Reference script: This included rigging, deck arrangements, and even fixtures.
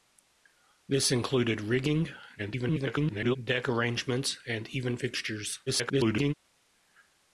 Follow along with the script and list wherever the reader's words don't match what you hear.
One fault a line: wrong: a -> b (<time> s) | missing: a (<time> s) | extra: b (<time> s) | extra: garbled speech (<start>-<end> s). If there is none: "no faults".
extra: garbled speech (2.4-3.4 s)
extra: garbled speech (5.7-6.3 s)